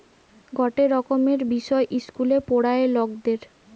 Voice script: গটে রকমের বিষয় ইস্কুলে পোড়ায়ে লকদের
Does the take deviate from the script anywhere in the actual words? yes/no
no